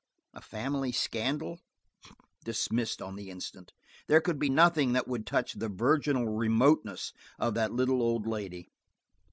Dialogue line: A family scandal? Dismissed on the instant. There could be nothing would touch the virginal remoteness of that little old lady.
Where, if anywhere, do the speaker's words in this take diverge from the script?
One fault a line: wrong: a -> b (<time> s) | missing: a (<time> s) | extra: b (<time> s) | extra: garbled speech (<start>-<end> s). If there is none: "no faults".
extra: that (4.9 s)